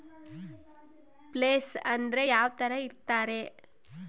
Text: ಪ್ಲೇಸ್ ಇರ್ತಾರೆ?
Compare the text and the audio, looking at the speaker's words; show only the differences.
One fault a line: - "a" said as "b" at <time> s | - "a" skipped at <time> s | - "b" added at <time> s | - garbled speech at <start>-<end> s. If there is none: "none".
- "ಅಂದ್ರೆ ಯಾವ್ತರ" added at 1.8 s